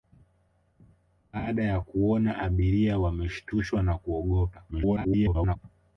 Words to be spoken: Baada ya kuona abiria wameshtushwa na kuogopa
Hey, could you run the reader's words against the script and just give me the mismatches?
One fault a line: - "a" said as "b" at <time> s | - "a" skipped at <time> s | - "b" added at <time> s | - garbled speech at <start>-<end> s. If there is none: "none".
- garbled speech at 4.7-5.6 s